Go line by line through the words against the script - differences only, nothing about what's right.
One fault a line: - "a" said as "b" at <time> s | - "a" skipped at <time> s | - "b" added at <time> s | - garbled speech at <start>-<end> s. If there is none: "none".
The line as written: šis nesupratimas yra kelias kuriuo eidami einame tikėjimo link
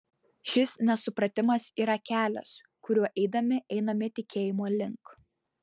none